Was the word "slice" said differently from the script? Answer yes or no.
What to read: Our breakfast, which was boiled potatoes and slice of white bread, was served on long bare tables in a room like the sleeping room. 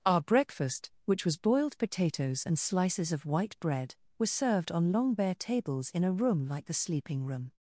yes